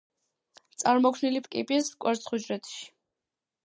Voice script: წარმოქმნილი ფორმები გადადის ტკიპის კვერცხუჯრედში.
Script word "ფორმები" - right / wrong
wrong